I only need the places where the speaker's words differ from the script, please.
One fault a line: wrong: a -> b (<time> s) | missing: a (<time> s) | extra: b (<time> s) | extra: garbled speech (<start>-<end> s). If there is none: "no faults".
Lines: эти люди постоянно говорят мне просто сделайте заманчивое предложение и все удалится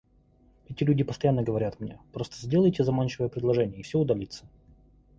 no faults